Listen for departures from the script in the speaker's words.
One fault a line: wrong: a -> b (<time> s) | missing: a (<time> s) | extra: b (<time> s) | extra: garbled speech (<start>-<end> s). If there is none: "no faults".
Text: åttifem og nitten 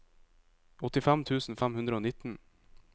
extra: tusen fem hundre (1.3 s)